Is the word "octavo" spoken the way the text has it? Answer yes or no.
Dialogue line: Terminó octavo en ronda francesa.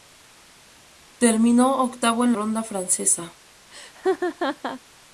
yes